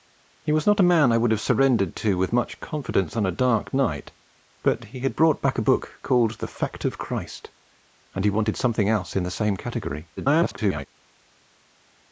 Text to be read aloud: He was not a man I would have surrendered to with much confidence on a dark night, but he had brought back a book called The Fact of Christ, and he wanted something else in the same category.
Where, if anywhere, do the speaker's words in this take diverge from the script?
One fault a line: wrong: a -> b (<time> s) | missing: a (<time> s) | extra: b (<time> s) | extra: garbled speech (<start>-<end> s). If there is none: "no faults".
extra: garbled speech (10.2-10.9 s)